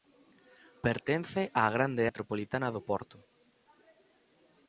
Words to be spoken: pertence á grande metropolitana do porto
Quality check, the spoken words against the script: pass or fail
pass